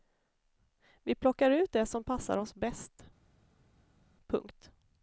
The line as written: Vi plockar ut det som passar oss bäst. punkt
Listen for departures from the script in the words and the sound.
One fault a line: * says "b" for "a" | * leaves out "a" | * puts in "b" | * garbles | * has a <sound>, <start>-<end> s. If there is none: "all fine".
all fine